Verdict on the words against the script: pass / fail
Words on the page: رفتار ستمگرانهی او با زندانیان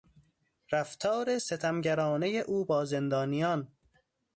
pass